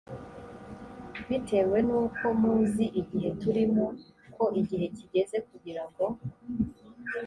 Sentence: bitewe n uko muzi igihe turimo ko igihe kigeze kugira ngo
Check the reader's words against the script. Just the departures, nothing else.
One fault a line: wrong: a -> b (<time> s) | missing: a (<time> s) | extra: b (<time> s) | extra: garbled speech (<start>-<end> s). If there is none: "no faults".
no faults